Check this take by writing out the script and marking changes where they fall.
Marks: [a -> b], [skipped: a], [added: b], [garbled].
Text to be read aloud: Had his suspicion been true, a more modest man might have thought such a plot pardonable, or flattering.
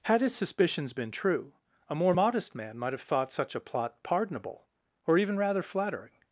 Had his [suspicion -> suspicions] been true, a more modest man might have thought such a plot pardonable, or [added: even rather] flattering.